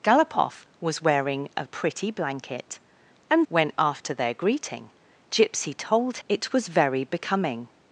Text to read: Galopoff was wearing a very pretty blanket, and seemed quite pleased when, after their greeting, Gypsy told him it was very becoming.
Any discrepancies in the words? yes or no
yes